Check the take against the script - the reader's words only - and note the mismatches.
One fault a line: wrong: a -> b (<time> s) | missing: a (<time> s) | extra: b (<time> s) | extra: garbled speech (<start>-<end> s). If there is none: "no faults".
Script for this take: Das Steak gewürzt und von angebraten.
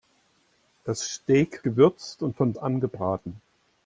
no faults